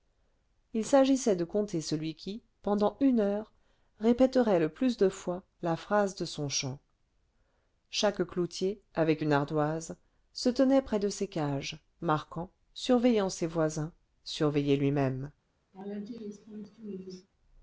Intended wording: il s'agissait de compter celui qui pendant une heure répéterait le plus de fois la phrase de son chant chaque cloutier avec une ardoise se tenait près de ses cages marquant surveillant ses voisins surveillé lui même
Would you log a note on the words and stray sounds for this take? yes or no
yes